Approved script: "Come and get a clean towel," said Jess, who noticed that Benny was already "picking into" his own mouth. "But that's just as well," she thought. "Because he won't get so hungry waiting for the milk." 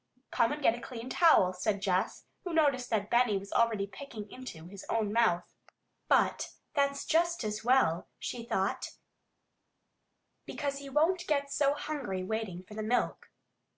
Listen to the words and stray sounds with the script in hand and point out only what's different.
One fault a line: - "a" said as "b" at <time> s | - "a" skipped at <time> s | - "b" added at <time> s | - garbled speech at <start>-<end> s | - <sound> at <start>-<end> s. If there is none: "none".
none